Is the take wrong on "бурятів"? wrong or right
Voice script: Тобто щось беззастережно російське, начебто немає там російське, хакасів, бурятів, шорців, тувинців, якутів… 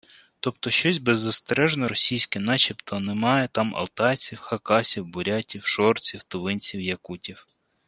right